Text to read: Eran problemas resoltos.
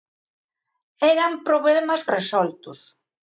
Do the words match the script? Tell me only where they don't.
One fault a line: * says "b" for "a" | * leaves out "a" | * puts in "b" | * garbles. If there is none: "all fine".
all fine